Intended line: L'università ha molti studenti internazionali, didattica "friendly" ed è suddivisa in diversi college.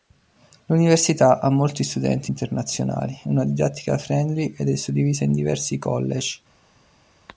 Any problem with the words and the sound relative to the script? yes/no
yes